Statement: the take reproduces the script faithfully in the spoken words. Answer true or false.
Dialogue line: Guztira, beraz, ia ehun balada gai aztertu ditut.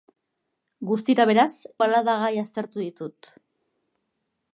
false